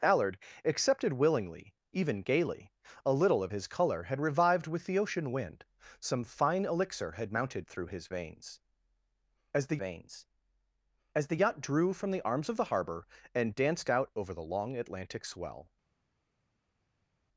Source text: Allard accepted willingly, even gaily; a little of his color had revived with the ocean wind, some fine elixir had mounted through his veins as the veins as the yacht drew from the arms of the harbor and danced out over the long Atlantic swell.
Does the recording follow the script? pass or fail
pass